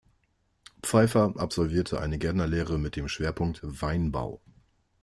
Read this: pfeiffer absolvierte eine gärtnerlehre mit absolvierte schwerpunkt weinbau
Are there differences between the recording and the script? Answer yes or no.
yes